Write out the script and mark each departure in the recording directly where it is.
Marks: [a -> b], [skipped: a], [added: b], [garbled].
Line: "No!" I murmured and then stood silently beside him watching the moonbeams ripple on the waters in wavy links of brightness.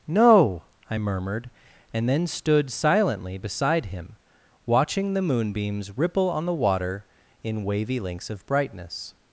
"No!" I murmured and then stood silently beside him watching the moonbeams ripple on the [waters -> water] in wavy links of brightness.